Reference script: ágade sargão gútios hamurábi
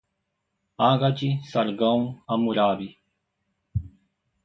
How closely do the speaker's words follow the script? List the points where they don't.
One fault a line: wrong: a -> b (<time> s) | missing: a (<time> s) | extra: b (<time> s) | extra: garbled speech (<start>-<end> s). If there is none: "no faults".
missing: gútios (2.2 s)